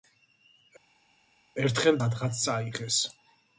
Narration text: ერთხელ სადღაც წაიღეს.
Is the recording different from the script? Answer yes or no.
no